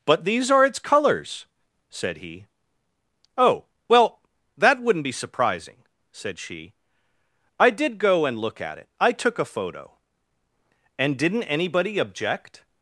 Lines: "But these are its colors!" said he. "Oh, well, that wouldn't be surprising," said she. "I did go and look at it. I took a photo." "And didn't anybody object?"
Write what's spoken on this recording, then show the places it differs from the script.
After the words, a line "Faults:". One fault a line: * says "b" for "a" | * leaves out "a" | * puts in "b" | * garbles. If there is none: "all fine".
"But these are its colors!" said he. "Oh, well, that wouldn't be surprising," said she. "I did go and look at it. I took a photo." "And didn't anybody object?"
Faults:
all fine